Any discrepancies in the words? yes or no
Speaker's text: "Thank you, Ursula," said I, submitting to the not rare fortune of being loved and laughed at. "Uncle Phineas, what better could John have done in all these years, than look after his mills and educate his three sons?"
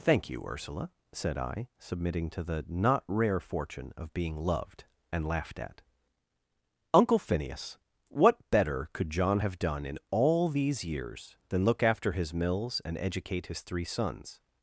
no